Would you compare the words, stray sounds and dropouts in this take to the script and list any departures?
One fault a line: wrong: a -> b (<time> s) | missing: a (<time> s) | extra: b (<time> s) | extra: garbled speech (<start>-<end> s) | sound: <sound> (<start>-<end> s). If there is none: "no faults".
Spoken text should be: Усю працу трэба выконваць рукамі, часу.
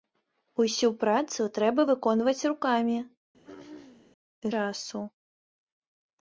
sound: throat clearing (3.4-4.1 s)